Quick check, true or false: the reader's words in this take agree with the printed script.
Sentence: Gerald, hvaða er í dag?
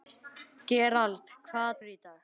true